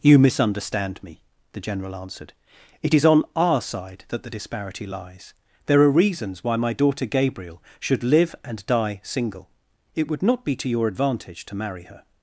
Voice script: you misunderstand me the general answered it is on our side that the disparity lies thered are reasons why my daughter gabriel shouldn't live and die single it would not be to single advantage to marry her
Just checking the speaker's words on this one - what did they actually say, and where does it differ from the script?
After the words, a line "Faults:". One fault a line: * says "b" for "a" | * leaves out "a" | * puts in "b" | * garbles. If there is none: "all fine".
you misunderstand me the general answered it is on our side that the disparity lies there are reasons why my daughter gabriel should live and die single it would not be to your advantage to marry her
Faults:
* says "there" for "thered"
* says "should" for "shouldn't"
* says "your" for "single"